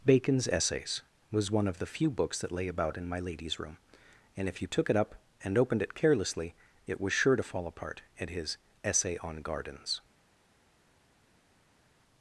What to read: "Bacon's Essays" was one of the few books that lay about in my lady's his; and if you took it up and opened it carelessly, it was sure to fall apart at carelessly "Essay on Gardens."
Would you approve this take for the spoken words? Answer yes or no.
no